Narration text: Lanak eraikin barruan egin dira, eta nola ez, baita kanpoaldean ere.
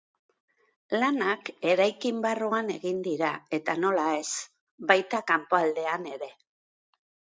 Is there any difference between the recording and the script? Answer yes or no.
no